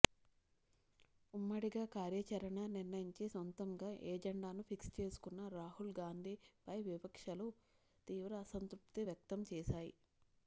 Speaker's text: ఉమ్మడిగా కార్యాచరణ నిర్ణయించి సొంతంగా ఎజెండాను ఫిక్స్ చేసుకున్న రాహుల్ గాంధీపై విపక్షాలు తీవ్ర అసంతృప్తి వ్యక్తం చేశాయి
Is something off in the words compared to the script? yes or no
no